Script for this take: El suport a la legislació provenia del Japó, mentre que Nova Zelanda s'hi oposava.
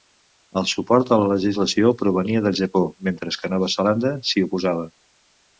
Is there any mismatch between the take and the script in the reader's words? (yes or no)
no